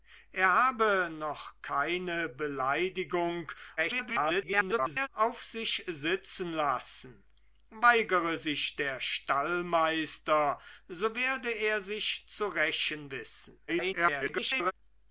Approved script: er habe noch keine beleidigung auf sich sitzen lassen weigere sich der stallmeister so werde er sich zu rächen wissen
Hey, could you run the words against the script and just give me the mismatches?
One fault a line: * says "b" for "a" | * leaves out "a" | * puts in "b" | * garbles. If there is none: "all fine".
* garbles
* garbles